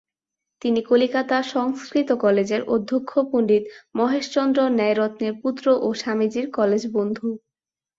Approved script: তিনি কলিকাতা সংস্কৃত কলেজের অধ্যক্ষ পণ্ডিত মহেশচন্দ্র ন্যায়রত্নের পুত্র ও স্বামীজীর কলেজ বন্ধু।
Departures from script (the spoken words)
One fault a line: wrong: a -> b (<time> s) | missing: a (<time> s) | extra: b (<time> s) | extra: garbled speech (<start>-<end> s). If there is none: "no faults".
no faults